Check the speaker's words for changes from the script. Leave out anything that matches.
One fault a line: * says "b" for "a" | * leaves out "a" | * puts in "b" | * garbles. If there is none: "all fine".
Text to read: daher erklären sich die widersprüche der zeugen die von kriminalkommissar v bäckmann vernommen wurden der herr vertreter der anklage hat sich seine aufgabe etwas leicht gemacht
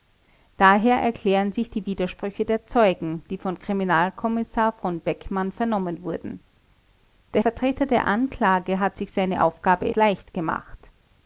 * leaves out "herr"
* leaves out "etwas"